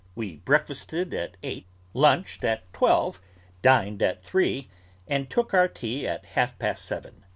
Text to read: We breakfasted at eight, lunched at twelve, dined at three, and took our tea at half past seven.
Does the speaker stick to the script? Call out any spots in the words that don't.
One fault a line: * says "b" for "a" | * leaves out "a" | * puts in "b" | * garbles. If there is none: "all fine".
all fine